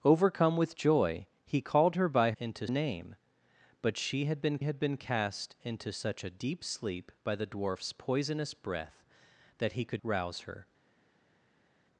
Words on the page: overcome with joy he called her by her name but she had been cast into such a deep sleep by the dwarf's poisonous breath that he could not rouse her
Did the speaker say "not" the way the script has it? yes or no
no